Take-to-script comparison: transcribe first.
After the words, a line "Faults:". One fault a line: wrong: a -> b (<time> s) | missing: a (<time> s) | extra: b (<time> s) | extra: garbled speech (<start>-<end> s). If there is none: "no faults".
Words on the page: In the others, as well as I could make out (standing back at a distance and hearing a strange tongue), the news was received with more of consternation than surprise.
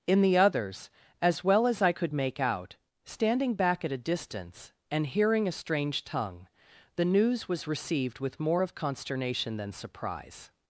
In the others, as well as I could make out (standing back at a distance and hearing a strange tongue), the news was received with more of consternation than surprise.
Faults:
no faults